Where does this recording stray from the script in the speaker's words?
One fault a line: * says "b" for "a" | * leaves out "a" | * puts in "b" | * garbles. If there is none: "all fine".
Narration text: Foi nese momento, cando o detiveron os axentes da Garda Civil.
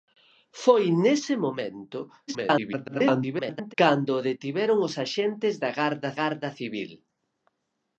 * garbles
* puts in "Garda"